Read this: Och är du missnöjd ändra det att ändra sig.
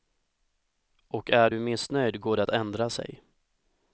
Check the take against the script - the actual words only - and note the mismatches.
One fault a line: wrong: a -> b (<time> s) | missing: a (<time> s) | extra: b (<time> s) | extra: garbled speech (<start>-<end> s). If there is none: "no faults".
wrong: ändra -> går (2.2 s)